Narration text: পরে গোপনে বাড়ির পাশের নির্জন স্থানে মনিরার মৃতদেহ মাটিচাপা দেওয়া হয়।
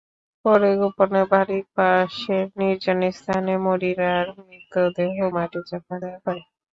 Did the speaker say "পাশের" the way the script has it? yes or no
yes